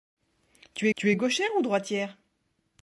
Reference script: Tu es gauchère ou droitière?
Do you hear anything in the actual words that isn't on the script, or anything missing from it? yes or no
yes